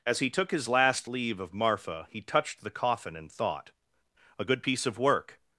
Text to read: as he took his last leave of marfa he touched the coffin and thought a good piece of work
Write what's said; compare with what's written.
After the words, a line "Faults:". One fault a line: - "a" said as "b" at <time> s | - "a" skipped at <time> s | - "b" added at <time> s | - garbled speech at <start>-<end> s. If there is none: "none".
as he took his last leave of marfa he touched the coffin and thought a good piece of work
Faults:
none